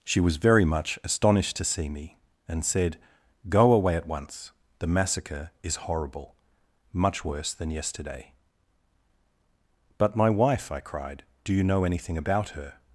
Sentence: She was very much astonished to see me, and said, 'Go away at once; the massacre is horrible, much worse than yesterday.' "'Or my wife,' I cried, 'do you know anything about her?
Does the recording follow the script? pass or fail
fail